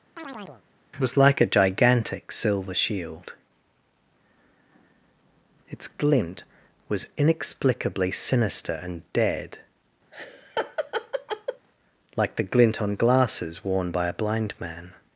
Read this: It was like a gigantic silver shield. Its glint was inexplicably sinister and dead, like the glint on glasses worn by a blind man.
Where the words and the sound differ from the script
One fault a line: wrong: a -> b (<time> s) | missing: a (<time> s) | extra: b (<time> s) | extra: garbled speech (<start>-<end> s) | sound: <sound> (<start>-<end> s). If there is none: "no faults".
sound: chirp (0.2-0.6 s)
missing: It (1.0 s)
sound: laugh (10.1-11.7 s)